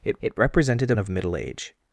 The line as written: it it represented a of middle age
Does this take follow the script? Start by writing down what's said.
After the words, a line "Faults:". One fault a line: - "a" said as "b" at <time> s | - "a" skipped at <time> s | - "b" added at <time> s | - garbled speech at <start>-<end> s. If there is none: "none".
it it represented a of middle age
Faults:
none